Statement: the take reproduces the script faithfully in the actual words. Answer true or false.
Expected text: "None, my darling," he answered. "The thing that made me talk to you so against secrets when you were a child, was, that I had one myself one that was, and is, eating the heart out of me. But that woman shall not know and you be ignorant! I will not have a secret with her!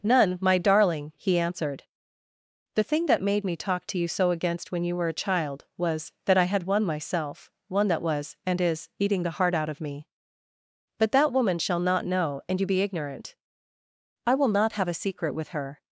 false